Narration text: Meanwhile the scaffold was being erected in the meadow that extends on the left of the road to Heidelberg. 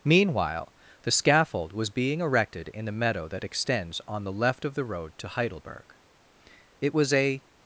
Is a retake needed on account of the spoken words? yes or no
yes